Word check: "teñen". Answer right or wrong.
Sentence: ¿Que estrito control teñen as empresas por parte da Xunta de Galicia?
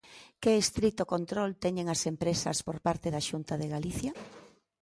right